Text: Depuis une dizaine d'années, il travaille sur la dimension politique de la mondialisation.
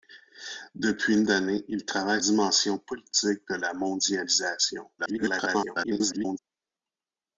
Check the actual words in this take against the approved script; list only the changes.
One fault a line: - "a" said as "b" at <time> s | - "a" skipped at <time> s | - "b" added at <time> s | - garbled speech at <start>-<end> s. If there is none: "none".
- "dizaine" skipped at 1.2 s
- "sur la" skipped at 2.2 s
- garbled speech at 5.0-6.4 s